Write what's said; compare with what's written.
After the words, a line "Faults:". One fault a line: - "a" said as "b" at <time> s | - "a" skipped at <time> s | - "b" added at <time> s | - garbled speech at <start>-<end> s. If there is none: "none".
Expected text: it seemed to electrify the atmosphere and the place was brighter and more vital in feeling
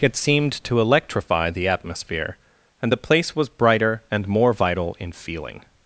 it seemed to electrify the atmosphere and the place was brighter and more vital in feeling
Faults:
none